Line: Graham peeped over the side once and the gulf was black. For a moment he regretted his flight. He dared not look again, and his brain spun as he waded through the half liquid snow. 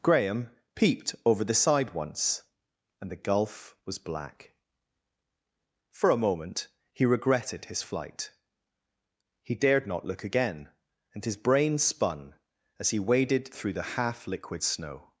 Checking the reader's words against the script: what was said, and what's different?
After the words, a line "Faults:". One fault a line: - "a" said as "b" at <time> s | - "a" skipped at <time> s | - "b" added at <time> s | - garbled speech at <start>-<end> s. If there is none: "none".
Graham peeped over the side once and the gulf was black. For a moment he regretted his flight. He dared not look again, and his brain spun as he waded through the half liquid snow.
Faults:
none